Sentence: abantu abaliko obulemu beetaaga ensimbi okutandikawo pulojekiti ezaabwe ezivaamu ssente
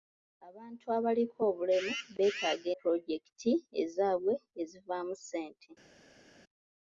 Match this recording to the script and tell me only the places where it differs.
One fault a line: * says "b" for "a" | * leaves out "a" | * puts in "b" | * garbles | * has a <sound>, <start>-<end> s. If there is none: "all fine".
* leaves out "ensimbi okutandikawo"